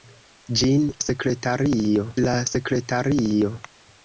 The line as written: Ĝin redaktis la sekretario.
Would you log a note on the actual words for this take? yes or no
yes